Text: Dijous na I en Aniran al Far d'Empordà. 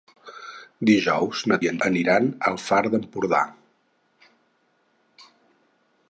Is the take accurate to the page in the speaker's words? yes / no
yes